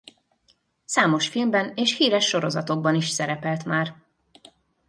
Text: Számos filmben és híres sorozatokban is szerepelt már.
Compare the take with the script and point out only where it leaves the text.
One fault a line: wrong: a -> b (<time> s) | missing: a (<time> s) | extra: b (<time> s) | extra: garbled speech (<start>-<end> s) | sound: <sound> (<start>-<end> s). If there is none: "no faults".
no faults